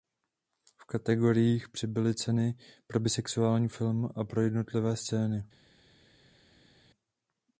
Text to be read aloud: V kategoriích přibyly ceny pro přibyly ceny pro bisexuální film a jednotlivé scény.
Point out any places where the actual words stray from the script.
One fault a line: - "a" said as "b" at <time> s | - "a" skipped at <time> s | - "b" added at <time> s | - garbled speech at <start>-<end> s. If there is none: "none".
- "přibyly ceny pro" skipped at 3.0 s
- "pro" added at 4.2 s